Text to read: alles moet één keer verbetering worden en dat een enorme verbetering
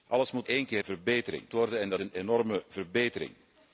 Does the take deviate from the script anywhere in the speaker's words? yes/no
no